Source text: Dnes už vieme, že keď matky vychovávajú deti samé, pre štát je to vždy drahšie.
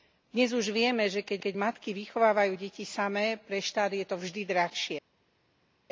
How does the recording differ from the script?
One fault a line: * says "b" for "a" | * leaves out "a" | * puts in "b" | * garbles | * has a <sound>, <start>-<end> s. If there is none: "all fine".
* puts in "keď"